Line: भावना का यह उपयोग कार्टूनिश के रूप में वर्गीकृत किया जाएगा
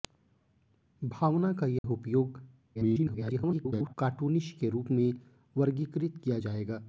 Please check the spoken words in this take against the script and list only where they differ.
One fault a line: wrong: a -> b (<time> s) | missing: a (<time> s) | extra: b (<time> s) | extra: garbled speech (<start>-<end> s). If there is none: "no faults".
extra: garbled speech (2.7-3.9 s)